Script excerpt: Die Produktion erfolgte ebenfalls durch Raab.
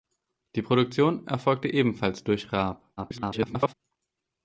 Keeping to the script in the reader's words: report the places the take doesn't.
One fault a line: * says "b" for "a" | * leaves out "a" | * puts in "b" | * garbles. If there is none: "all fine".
* garbles